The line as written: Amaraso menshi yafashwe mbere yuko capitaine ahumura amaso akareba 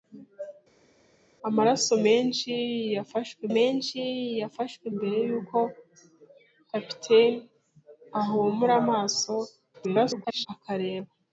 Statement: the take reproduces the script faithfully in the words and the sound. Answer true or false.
false